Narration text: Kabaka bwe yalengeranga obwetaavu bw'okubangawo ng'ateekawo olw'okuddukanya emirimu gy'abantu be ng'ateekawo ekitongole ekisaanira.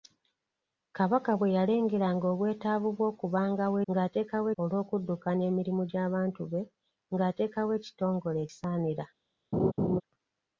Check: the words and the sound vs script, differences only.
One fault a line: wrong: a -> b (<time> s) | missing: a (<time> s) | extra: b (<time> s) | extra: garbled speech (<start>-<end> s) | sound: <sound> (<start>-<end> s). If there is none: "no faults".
sound: laugh (9.5-10.0 s)